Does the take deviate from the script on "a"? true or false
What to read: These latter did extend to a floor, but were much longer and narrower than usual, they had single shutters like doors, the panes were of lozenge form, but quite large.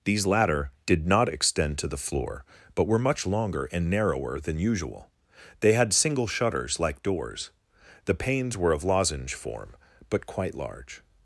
true